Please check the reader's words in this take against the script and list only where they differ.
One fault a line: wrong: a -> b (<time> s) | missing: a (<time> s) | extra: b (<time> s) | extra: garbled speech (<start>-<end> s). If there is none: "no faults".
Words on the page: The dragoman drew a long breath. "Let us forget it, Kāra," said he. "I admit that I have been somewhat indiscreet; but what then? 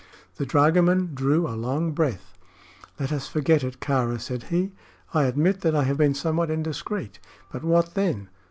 no faults